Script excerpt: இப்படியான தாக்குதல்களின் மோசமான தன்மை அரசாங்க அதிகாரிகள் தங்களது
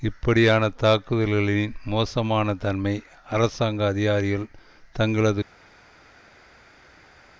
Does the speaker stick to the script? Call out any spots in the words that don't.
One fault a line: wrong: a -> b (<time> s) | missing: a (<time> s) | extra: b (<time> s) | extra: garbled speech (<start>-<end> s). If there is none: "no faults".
no faults